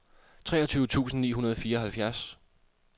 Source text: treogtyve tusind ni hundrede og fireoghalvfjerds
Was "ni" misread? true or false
false